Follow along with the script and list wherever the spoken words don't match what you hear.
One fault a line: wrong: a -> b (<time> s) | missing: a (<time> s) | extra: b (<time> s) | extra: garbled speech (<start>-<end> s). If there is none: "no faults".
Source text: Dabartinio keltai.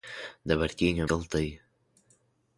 no faults